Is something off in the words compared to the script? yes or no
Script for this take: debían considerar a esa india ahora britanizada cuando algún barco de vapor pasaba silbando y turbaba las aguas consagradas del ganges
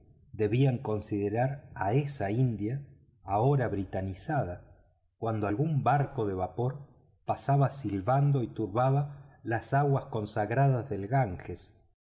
no